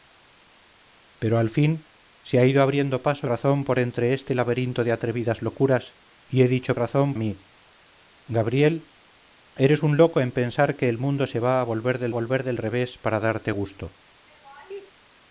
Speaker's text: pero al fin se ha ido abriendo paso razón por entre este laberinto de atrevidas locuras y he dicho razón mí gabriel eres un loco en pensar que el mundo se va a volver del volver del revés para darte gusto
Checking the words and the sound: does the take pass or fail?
fail